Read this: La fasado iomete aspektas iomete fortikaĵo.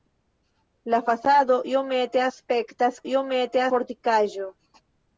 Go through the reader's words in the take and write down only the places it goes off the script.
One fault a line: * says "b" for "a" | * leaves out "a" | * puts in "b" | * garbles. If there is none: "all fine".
all fine